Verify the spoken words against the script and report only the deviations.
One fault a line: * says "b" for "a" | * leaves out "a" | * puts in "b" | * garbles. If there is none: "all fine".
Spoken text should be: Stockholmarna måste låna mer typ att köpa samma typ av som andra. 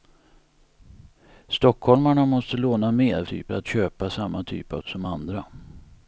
all fine